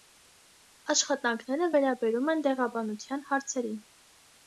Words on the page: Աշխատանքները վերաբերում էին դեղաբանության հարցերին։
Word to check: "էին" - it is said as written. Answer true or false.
false